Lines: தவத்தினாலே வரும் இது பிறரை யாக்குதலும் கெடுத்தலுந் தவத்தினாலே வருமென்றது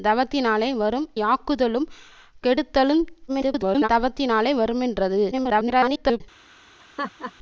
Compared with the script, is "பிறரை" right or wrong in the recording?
wrong